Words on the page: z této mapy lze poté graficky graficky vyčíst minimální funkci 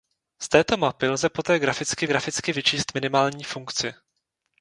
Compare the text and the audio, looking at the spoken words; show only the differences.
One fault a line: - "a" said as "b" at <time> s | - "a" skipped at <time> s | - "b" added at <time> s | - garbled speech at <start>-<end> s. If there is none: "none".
none